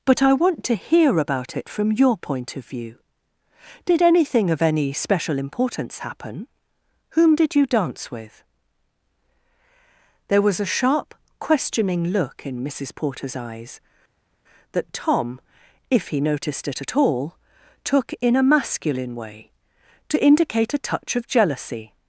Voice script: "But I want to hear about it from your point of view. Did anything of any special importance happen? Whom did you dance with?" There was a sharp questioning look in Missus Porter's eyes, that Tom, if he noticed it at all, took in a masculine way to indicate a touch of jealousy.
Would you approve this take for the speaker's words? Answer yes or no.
yes